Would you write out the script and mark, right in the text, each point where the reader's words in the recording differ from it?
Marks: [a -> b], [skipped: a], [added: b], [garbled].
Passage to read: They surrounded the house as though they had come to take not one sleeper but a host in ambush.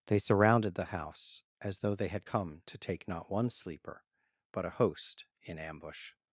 They surrounded the house as though they had come to take not one sleeper but a host in ambush.